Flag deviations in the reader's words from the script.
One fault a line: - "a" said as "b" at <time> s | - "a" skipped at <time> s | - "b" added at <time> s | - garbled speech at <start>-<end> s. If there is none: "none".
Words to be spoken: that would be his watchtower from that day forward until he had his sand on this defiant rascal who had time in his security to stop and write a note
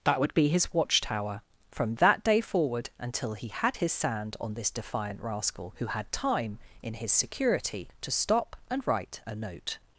none